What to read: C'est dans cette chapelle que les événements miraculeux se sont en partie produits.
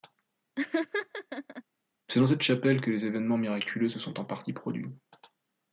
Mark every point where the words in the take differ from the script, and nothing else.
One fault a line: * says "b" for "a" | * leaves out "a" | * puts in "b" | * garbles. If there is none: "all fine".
all fine